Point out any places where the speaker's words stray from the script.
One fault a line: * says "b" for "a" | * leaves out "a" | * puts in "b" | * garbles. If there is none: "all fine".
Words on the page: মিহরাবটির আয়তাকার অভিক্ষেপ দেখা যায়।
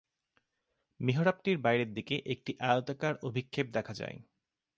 * puts in "বাইরের দিকে একটি"